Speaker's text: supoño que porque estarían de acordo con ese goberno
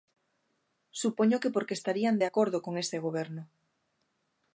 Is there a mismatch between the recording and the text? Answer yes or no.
no